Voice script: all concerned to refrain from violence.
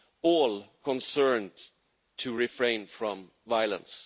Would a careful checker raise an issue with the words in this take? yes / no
no